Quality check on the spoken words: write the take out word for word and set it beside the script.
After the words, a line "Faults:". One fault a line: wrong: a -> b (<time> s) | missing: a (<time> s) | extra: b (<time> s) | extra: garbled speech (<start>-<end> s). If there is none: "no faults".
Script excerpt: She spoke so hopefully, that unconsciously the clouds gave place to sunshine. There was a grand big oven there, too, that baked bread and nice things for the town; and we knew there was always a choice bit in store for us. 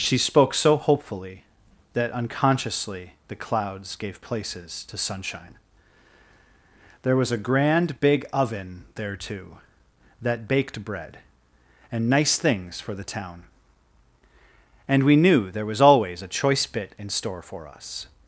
She spoke so hopefully, that unconsciously the clouds gave places to sunshine. There was a grand big oven there, too, that baked bread and nice things for the town; and we knew there was always a choice bit in store for us.
Faults:
wrong: place -> places (4.2 s)